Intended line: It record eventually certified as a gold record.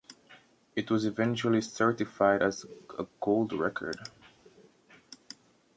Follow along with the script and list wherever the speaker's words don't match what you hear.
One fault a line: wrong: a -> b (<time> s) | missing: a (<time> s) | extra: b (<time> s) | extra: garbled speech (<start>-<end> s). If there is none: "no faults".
wrong: record -> was (0.9 s)